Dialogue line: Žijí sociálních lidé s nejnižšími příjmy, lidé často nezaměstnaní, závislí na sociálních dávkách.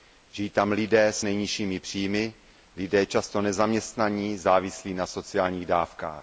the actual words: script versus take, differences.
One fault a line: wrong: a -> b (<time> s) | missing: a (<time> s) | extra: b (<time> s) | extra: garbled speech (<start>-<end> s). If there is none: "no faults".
wrong: sociálních -> tam (0.5 s)